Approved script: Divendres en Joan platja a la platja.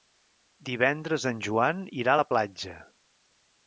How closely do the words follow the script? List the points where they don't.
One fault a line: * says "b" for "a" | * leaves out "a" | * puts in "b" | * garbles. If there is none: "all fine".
* says "irà" for "platja"